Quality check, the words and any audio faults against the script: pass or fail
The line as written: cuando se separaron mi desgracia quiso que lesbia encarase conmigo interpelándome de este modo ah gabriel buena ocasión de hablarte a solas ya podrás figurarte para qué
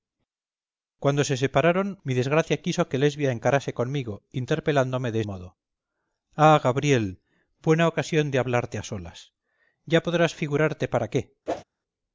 fail